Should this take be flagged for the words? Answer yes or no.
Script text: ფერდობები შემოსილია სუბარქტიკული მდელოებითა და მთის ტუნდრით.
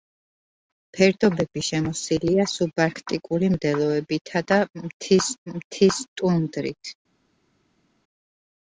yes